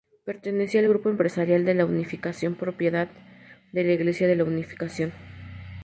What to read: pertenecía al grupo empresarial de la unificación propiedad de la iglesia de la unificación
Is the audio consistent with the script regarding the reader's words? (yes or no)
yes